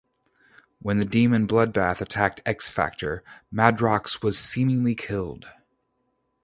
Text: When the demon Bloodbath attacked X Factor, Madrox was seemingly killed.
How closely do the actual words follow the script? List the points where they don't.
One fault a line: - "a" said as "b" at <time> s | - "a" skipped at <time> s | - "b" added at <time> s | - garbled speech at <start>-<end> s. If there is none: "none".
none